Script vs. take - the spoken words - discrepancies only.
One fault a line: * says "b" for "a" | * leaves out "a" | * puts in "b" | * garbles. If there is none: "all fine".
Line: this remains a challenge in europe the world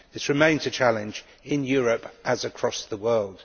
* puts in "as across"